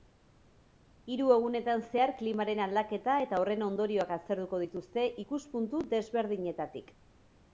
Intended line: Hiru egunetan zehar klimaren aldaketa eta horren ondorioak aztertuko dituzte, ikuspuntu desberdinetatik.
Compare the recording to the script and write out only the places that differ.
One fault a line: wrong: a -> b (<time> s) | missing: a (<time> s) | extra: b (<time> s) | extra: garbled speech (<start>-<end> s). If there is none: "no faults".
no faults